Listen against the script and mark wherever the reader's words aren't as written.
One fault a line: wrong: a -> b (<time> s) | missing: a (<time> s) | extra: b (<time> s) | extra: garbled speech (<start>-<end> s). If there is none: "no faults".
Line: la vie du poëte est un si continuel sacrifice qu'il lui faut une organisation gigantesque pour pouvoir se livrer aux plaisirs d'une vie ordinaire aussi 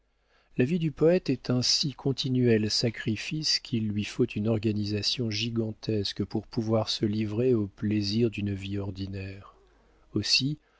no faults